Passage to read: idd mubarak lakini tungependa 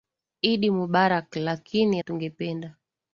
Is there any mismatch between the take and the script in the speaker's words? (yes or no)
no